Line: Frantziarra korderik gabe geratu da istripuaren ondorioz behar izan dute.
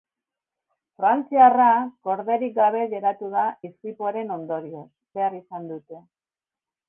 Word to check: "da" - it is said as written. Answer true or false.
true